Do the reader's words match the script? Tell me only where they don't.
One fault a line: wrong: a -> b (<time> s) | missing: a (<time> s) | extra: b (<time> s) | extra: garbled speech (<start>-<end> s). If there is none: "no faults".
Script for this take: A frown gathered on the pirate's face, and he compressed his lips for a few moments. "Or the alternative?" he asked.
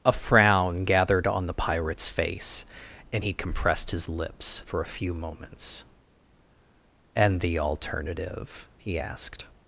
wrong: Or -> And (7.1 s)